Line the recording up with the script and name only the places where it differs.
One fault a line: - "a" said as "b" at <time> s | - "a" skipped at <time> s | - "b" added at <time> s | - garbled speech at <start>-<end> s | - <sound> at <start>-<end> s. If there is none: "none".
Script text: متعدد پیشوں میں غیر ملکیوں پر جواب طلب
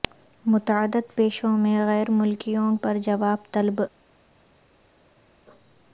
none